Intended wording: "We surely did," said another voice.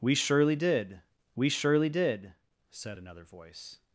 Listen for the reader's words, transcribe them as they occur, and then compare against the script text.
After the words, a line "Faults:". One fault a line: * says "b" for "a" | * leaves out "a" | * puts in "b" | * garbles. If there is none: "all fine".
"We surely did we surely did," said another voice.
Faults:
* puts in "we surely did"